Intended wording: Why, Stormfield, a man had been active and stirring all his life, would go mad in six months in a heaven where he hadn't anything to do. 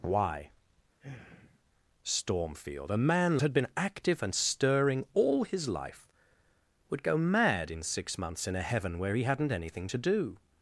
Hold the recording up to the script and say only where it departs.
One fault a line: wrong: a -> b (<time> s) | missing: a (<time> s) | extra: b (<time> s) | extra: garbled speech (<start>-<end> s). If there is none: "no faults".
no faults